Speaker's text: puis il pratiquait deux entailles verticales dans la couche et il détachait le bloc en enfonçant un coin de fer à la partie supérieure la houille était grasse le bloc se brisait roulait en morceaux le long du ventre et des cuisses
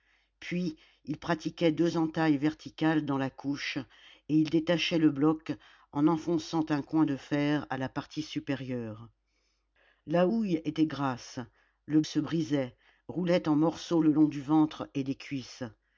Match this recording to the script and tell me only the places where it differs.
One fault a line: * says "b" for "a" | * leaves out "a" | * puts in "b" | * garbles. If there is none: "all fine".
* leaves out "bloc"